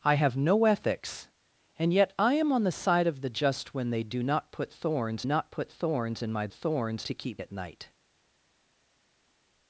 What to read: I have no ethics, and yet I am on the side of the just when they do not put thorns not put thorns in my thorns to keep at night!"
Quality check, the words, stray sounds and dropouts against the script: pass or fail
pass